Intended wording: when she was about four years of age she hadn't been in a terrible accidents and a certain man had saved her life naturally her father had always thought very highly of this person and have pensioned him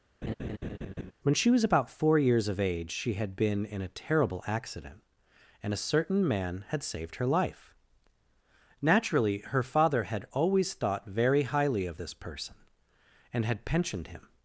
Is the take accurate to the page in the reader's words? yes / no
no